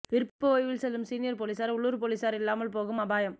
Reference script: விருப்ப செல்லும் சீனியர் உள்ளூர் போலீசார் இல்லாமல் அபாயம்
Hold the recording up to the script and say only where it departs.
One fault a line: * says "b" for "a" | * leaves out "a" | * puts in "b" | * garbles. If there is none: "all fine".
* puts in "ஓய்வில்"
* puts in "போலீசார்"
* puts in "போகும்"